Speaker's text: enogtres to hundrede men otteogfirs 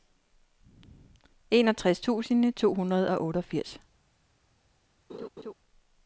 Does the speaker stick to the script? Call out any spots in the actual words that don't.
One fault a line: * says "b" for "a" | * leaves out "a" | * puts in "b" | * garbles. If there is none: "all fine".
* puts in "tusind"
* says "og" for "men"